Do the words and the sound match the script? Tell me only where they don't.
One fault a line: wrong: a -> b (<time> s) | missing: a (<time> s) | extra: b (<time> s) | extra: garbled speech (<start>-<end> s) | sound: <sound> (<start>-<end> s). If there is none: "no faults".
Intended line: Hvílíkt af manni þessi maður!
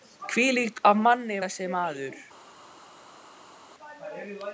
no faults